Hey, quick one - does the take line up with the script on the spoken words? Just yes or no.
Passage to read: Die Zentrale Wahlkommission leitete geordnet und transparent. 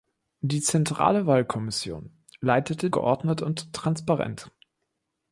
yes